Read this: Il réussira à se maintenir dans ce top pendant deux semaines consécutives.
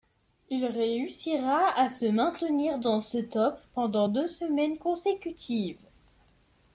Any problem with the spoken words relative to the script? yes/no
no